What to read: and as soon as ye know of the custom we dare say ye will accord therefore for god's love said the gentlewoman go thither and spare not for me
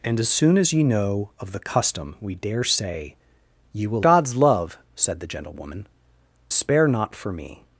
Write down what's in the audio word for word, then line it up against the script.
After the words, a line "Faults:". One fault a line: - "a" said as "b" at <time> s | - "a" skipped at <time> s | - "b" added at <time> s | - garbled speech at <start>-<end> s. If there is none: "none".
and as soon as ye know of the custom we dare say ye will god's love said the gentlewoman spare not for me
Faults:
- "accord therefore for" skipped at 4.0 s
- "go thither and" skipped at 5.9 s